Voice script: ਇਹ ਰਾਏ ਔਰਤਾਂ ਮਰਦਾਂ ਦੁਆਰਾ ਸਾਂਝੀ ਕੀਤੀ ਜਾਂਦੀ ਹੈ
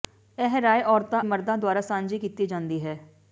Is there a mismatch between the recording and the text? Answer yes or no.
no